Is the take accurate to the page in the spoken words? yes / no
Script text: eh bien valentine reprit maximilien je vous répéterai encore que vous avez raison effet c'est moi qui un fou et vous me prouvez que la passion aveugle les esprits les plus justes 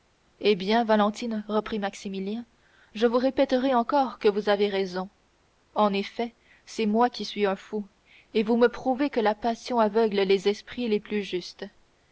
no